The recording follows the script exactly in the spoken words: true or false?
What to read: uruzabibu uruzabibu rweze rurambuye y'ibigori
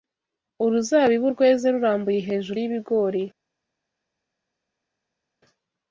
false